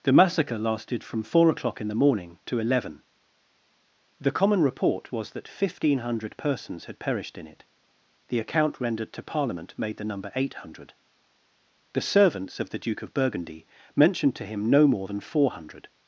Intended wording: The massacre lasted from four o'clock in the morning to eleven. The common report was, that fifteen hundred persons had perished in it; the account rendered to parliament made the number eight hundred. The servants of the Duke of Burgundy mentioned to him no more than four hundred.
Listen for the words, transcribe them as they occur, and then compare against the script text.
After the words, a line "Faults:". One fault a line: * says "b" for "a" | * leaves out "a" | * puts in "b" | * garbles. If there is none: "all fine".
The massacre lasted from four o'clock in the morning to eleven. The common report was, that fifteen hundred persons had perished in it; the account rendered to parliament made the number eight hundred. The servants of the Duke of Burgundy mentioned to him no more than four hundred.
Faults:
all fine